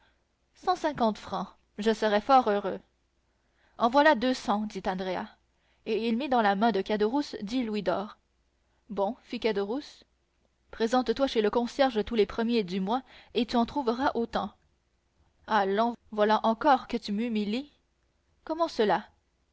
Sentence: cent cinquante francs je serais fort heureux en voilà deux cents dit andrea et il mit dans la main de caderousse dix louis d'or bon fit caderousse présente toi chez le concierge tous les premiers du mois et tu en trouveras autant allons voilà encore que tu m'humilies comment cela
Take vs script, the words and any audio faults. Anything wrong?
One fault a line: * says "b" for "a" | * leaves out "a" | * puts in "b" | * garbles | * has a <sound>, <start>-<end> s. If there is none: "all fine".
all fine